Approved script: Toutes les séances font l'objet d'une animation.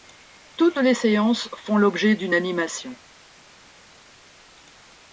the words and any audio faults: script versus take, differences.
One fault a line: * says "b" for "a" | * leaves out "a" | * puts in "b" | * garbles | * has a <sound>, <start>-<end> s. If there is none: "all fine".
all fine